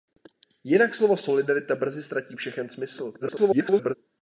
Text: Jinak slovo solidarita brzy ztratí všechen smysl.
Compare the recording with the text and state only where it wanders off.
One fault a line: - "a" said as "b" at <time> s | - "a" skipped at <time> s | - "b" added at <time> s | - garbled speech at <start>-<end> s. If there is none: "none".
- garbled speech at 3.2-4.0 s